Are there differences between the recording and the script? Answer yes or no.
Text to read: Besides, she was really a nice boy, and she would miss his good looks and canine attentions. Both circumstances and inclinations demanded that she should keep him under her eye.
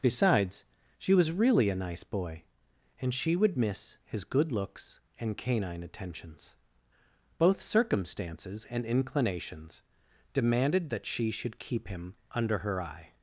no